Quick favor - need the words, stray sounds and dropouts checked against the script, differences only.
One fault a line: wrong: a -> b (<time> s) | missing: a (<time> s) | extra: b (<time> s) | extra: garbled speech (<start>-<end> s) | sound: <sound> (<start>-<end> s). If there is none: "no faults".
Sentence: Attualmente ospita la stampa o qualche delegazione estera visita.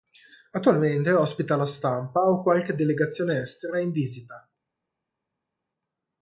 extra: in (3.8 s)